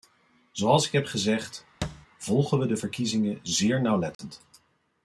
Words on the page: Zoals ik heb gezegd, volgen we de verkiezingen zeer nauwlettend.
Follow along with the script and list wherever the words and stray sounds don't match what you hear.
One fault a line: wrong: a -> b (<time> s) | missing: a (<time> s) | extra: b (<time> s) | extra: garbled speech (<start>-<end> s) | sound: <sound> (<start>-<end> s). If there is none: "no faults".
sound: thud (1.8-2.1 s)
sound: dropout (4.1-4.2 s)